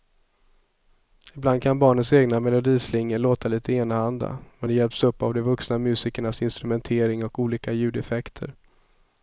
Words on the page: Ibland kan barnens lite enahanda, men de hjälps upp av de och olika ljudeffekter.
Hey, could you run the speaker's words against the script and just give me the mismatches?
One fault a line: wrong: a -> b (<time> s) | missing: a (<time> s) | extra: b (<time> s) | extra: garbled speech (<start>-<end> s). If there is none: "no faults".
extra: egna melodislingor låta (2.1 s)
extra: vuxna musikernas instrumentering (5.4 s)